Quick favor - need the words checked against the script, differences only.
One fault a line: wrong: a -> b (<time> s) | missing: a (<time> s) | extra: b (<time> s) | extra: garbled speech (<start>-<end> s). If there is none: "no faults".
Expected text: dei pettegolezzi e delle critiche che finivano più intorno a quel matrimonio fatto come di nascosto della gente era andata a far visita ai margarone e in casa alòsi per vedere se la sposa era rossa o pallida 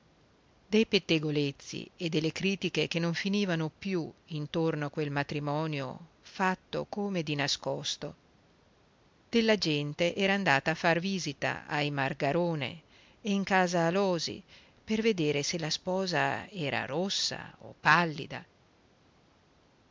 extra: non (3.0 s)